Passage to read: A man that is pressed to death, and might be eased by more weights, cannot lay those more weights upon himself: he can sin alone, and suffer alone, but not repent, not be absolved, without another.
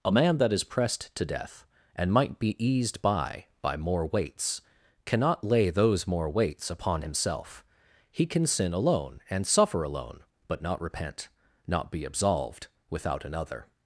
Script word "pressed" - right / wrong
right